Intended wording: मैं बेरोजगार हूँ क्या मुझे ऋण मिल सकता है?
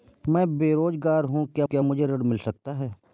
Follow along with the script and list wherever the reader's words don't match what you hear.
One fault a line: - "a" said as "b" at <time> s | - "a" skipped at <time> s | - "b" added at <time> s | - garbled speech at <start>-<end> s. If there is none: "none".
- "क्या" added at 1.6 s